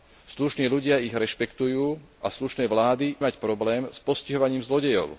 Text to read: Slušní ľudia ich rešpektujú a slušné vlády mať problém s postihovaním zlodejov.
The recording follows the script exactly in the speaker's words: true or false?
true